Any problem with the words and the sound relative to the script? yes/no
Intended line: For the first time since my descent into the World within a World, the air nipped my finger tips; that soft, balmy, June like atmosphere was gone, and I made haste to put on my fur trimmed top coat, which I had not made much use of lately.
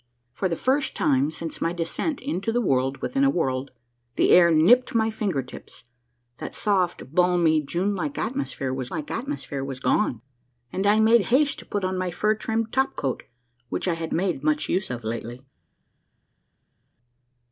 yes